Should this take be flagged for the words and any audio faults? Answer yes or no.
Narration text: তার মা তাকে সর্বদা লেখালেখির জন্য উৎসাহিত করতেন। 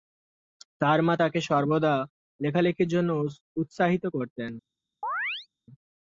yes